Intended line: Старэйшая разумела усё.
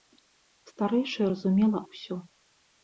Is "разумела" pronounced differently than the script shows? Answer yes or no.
no